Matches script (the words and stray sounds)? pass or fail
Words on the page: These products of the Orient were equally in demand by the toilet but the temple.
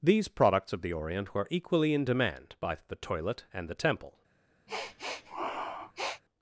fail